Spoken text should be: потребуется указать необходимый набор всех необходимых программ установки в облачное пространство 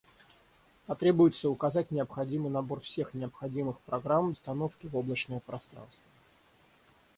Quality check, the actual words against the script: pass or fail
pass